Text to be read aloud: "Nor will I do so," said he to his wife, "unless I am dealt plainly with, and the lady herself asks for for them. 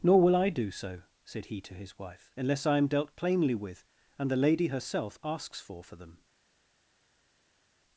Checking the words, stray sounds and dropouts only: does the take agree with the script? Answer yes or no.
yes